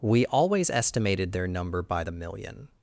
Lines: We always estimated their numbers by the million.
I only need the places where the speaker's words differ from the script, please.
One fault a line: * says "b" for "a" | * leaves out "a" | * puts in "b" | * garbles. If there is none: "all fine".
* says "number" for "numbers"